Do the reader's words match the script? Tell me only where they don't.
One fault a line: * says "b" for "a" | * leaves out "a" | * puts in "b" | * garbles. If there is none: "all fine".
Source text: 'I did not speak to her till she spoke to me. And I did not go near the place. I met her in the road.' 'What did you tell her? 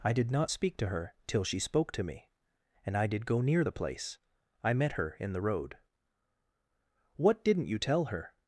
* leaves out "not"
* says "didn't" for "did"